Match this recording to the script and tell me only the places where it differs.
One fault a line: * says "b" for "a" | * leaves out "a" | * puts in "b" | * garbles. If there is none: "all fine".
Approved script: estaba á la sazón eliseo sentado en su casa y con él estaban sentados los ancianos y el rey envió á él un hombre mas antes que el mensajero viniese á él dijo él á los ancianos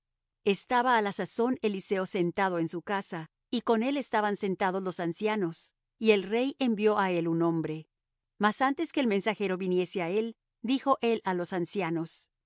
all fine